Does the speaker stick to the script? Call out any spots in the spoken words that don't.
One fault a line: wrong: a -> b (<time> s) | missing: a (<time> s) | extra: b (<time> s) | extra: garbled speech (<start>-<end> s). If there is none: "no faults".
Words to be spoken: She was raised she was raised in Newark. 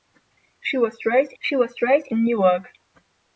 no faults